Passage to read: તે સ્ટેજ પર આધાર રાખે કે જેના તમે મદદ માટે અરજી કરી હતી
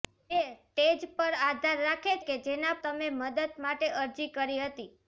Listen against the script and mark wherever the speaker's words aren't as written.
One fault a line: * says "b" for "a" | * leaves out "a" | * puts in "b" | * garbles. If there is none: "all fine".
all fine